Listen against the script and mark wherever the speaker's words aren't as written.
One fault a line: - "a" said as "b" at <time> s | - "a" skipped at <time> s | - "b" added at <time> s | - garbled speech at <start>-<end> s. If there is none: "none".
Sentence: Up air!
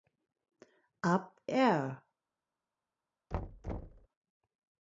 none